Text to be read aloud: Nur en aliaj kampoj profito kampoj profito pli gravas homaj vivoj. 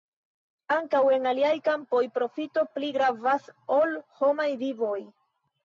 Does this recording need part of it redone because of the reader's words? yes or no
yes